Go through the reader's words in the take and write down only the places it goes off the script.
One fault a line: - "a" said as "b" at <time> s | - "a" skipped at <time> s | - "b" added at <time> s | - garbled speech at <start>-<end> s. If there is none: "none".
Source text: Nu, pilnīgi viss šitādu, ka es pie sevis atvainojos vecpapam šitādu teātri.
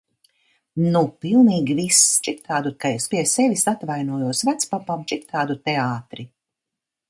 none